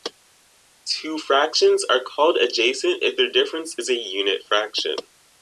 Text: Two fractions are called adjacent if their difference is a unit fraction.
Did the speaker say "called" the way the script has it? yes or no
yes